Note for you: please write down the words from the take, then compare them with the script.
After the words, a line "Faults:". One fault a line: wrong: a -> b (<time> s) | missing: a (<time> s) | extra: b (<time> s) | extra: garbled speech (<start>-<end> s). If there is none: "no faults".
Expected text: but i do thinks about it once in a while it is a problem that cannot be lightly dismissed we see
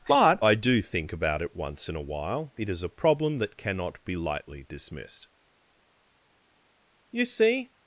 but i do think about it once in a while it is a problem that cannot be lightly dismissed you see
Faults:
wrong: thinks -> think (0.8 s)
wrong: we -> you (7.1 s)